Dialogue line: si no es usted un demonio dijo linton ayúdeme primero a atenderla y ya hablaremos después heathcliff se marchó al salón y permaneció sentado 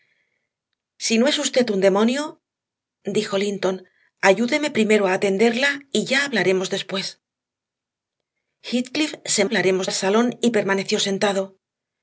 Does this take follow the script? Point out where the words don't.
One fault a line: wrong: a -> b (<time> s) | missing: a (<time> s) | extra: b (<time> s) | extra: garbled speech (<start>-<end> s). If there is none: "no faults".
wrong: marchó -> hablaremos (9.4 s)